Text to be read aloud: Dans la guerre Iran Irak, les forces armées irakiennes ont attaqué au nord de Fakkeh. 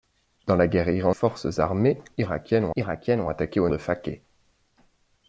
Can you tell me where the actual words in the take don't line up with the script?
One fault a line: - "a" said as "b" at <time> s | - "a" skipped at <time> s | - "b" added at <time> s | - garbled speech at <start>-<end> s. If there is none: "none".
- "Irak les" skipped at 1.1 s
- "irakiennes ont" added at 2.8 s
- "nord" skipped at 3.7 s